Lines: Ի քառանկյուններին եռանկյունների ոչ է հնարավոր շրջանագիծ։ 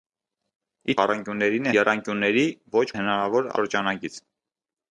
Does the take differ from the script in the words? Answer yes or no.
no